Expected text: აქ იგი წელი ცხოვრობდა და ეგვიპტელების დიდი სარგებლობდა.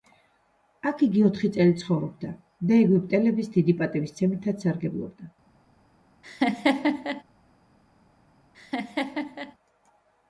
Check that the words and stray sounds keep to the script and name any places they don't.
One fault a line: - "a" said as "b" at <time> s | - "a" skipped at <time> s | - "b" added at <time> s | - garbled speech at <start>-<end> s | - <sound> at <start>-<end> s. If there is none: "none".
- "ოთხი" added at 1.3 s
- "პატივისცემითაც" added at 3.8 s
- laugh at 6.2-7.2 s
- laugh at 8.5-9.5 s